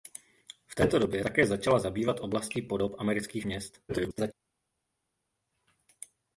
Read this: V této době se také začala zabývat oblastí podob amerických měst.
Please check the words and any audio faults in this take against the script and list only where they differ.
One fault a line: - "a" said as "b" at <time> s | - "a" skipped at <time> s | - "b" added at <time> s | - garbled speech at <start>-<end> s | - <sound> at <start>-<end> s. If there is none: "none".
- "se" skipped at 1.2 s
- garbled speech at 3.9-4.3 s